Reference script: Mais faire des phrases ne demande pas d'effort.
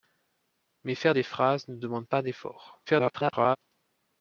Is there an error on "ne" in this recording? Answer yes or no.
no